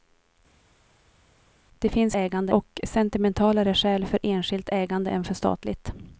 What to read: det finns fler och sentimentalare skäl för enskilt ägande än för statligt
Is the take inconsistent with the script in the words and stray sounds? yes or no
yes